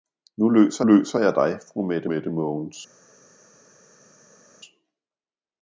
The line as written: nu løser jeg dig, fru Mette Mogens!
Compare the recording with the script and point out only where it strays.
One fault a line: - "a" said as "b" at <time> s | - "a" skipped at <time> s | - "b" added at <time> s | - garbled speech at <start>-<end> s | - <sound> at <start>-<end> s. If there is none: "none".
- "løser" added at 0.8 s
- "Mette" added at 2.0 s